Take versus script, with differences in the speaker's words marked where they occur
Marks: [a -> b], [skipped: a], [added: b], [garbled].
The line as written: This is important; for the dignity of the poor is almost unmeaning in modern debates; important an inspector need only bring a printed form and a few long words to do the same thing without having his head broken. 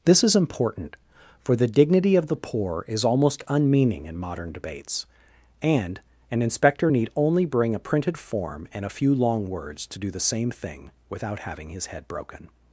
This is important; for the dignity of the poor is almost unmeaning in modern debates; [important -> and] an inspector need only bring a printed form and a few long words to do the same thing without having his head broken.